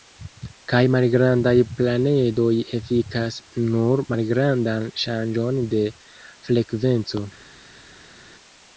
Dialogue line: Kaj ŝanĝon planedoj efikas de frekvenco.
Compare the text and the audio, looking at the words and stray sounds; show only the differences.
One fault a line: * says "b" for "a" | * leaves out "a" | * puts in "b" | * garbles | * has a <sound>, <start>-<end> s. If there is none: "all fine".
* says "malgrandaj" for "ŝanĝon"
* puts in "nur malgrandan ŝanĝon"